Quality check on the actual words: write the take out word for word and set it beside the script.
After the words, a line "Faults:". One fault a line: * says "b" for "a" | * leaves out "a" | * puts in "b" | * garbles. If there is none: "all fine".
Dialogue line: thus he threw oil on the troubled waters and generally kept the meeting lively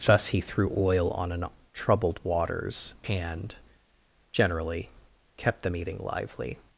thus he threw oil on an troubled waters and generally kept the meeting lively
Faults:
* says "an" for "the"